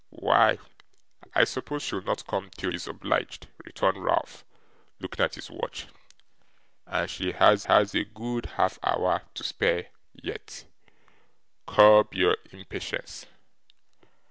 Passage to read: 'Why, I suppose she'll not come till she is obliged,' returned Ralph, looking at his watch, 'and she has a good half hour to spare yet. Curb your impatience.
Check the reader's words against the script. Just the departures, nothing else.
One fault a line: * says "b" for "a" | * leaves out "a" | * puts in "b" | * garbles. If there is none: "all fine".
* leaves out "she"
* puts in "has"